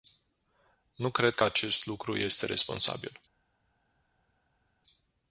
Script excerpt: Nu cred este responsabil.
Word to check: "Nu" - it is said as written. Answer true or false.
true